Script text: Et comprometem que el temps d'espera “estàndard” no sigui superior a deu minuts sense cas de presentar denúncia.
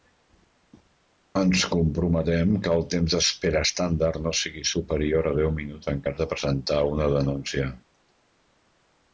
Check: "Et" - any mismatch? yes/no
yes